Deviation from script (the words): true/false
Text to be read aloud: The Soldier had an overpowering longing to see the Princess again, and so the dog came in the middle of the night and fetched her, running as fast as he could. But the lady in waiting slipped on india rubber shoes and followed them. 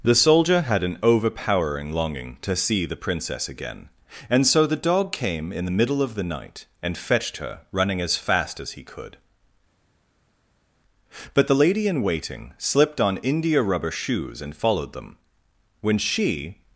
true